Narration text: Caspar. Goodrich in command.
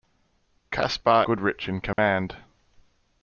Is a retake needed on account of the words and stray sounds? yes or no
yes